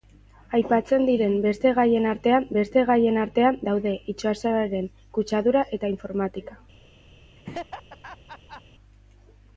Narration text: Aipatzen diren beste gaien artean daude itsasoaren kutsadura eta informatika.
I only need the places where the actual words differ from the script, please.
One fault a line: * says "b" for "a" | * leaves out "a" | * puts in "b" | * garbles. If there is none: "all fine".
* puts in "beste gaien artean"